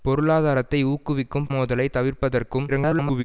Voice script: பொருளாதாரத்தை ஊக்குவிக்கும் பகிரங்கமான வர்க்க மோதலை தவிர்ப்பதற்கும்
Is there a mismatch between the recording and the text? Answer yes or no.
yes